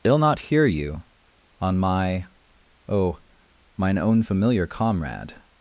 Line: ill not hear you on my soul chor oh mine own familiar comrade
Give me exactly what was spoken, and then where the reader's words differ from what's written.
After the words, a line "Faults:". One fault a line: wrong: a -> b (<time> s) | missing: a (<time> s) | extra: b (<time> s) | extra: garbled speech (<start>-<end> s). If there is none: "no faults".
ill not hear you on my oh mine own familiar comrade
Faults:
missing: soul chor (2.2 s)